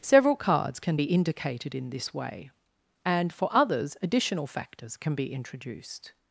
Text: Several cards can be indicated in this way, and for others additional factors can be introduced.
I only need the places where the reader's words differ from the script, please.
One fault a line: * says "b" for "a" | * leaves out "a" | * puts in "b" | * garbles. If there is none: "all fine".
all fine